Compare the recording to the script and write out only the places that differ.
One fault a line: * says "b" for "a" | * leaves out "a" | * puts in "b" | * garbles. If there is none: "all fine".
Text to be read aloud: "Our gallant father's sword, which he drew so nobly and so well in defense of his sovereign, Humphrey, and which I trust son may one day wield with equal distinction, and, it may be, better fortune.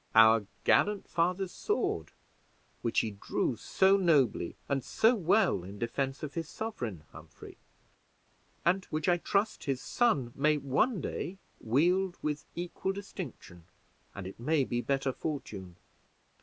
* puts in "his"